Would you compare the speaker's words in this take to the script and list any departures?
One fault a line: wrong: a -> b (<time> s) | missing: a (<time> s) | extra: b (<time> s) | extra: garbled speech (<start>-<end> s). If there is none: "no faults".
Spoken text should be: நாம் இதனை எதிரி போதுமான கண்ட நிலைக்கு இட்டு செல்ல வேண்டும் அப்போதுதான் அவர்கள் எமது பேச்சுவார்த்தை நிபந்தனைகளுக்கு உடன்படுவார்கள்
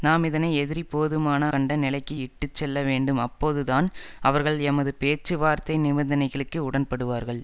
no faults